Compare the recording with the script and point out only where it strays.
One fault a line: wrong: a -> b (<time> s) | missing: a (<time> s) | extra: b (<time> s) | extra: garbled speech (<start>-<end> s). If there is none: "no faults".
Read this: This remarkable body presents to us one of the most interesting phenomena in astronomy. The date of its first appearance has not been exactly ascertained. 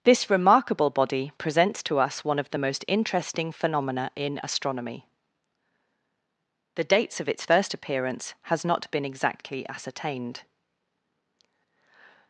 wrong: date -> dates (6.8 s)